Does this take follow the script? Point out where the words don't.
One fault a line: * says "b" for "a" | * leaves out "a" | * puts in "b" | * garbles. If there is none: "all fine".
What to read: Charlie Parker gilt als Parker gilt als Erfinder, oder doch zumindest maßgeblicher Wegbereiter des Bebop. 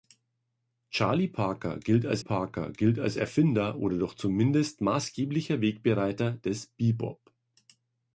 all fine